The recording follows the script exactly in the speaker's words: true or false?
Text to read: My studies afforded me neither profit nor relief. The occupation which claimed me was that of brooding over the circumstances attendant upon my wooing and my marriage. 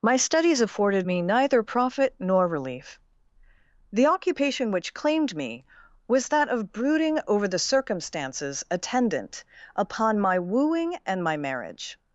true